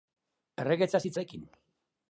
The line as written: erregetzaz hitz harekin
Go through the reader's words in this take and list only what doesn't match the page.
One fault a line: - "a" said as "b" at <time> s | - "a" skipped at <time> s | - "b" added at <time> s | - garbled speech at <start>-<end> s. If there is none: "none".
none